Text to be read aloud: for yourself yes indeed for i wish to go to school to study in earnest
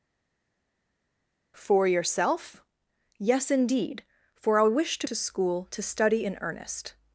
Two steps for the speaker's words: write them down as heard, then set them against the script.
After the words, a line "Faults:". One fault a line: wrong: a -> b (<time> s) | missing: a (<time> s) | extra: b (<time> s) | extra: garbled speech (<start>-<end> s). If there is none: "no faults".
for yourself yes indeed for i wish to to school to study in earnest
Faults:
missing: go (5.1 s)